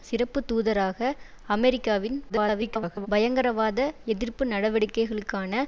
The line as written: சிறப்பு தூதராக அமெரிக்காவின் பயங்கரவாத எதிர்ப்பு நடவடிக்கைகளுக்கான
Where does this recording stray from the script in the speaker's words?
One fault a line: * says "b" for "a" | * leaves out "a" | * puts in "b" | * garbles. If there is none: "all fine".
* garbles